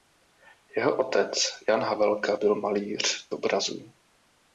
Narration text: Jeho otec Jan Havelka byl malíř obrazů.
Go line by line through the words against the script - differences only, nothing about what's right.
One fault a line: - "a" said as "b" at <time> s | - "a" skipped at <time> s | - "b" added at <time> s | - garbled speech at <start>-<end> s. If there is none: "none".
none